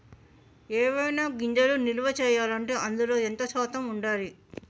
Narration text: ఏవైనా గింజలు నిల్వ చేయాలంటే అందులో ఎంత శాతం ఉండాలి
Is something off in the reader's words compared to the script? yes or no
no